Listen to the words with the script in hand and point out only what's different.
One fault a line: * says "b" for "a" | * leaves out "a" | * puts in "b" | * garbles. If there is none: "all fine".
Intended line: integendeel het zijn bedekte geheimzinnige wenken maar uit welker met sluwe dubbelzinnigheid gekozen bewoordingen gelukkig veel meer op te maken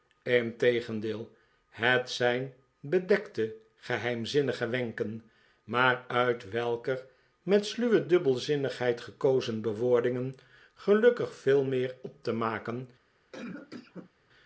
all fine